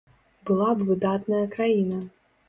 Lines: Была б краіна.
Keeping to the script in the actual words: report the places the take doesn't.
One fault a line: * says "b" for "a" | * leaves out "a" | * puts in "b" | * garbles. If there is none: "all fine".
* puts in "выдатная"